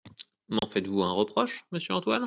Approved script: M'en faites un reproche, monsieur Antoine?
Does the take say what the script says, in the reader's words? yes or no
no